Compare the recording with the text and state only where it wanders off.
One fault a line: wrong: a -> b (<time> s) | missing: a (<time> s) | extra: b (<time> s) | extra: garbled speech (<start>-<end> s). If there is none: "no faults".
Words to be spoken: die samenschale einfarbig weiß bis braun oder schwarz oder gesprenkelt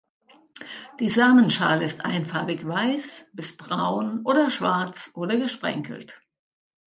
extra: ist (1.8 s)